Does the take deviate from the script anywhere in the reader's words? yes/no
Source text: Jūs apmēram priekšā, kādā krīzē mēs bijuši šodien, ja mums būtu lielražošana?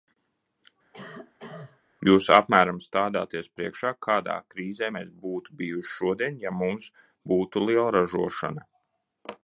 yes